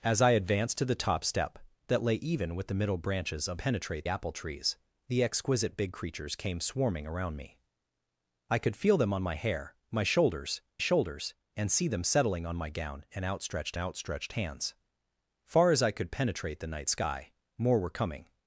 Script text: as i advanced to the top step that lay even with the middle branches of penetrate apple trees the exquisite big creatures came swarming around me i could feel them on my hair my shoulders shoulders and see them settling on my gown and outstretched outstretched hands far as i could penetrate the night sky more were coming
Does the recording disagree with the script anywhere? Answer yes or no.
no